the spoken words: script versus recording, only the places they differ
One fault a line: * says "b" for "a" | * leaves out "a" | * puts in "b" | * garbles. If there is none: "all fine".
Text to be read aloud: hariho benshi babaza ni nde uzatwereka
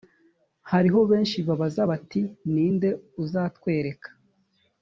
* puts in "bati"